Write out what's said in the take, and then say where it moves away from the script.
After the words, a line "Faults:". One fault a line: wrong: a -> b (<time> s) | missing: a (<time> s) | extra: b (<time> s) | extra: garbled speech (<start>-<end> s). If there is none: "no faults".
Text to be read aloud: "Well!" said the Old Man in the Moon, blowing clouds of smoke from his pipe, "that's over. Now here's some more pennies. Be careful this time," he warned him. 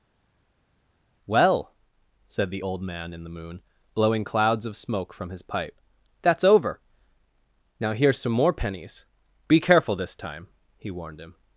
"Well!" said the Old Man in the Moon, blowing clouds of smoke from his pipe, "that's over. Now here's some more pennies. Be careful this time," he warned him.
Faults:
no faults